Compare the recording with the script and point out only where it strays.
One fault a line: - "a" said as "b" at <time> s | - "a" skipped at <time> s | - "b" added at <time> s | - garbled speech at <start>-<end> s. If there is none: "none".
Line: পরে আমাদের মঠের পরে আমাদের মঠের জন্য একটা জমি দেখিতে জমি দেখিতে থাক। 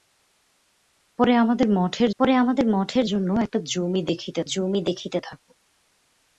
none